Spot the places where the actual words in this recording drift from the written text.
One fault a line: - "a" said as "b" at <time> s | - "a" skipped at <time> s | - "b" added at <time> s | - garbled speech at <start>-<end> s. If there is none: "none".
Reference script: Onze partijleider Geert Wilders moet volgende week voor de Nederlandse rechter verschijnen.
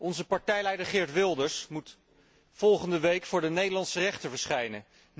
none